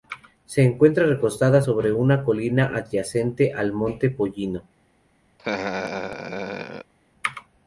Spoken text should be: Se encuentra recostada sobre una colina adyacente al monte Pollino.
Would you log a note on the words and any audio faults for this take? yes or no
yes